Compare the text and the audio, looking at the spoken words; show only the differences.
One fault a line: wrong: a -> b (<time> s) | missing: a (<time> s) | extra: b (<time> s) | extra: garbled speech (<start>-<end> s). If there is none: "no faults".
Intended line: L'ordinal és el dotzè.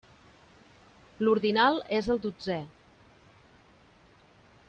no faults